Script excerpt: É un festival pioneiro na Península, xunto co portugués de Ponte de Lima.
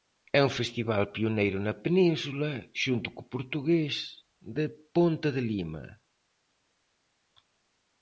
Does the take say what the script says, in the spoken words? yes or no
yes